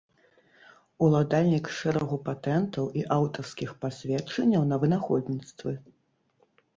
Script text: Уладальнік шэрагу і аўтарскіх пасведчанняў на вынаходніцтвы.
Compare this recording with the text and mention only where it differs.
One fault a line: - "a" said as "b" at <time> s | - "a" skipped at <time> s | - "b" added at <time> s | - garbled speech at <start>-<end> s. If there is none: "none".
- "патэнтаў" added at 2.3 s